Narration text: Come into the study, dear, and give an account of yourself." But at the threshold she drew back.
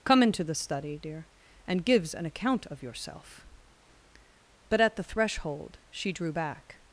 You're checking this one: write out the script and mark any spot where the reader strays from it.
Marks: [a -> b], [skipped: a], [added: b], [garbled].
Come into the study, dear, and [give -> gives] an account of yourself." But at the threshold she drew back.